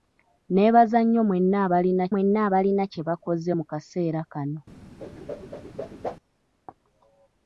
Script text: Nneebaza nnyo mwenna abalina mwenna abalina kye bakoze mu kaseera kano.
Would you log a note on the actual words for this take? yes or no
no